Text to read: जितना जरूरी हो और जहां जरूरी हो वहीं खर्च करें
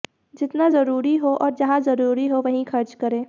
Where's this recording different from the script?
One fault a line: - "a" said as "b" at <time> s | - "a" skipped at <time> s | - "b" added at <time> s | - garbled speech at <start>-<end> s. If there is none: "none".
none